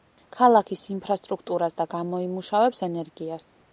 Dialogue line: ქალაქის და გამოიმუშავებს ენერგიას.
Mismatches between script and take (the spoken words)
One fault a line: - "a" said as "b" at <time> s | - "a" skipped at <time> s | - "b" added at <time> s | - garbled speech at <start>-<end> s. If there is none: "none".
- "ინფრასტრუქტურას" added at 0.9 s